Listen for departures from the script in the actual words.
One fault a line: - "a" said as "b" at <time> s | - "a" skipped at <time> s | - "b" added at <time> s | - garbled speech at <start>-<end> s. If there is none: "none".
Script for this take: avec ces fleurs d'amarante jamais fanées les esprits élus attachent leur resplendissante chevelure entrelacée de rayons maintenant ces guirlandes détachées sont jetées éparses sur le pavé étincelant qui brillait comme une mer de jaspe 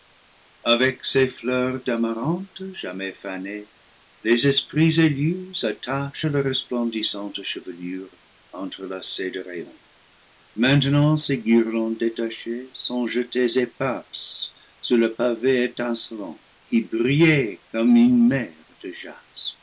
none